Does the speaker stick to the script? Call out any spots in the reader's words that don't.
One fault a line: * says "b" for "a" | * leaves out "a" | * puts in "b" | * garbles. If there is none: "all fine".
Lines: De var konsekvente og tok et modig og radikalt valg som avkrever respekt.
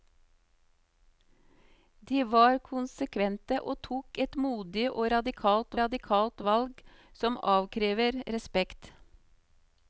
* puts in "radikalt"